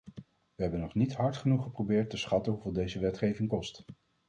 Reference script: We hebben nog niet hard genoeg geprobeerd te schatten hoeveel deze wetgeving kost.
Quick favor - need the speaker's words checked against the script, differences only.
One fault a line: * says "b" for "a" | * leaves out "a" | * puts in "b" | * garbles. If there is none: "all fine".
all fine